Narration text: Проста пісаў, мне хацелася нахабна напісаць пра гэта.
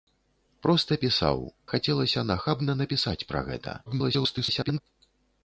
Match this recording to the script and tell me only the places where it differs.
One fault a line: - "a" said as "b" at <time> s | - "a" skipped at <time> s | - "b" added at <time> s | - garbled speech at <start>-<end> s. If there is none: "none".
- "мне" skipped at 1.4 s
- garbled speech at 3.9-4.8 s